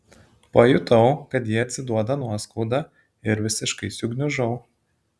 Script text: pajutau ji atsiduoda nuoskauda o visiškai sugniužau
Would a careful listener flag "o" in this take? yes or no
yes